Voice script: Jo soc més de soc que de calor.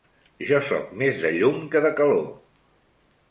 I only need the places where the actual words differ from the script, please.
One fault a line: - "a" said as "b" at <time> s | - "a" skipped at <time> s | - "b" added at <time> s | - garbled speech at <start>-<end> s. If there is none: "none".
- "soc" said as "llum" at 1.4 s